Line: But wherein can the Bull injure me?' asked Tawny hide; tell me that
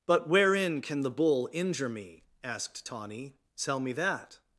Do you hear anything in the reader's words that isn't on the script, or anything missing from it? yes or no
yes